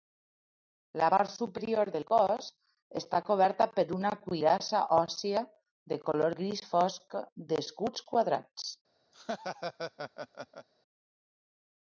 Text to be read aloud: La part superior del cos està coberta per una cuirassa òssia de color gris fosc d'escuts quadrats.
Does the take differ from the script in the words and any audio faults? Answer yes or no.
yes